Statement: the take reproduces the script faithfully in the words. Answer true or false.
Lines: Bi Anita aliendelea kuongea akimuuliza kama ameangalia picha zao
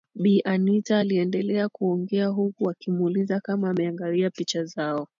false